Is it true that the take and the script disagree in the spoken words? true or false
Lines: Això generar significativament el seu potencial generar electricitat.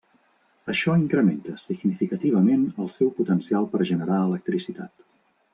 true